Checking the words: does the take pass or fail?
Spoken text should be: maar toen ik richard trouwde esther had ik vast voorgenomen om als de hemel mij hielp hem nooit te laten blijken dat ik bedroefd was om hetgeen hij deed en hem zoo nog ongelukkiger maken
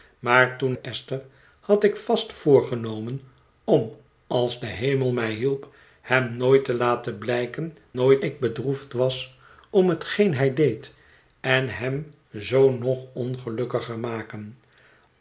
fail